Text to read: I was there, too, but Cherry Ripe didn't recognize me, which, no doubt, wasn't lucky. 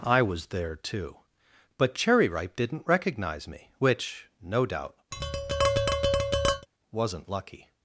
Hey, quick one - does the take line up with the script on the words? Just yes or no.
yes